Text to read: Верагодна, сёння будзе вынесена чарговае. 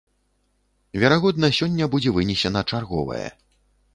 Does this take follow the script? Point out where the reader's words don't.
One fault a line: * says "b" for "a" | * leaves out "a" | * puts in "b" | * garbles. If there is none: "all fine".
all fine